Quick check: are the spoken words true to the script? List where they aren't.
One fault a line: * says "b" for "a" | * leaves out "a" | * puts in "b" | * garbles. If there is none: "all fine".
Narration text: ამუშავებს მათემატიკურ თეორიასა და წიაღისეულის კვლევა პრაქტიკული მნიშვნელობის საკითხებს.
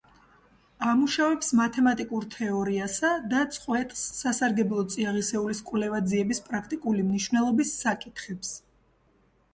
* puts in "წყვეტს სასარგებლო"
* puts in "ძიების"